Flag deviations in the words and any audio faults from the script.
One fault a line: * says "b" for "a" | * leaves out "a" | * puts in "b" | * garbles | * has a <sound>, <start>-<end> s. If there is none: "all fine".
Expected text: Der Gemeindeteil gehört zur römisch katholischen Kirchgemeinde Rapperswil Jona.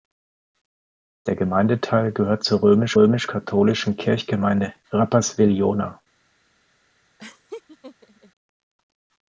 * puts in "römisch"
* has a laugh, 7.2-8.3 s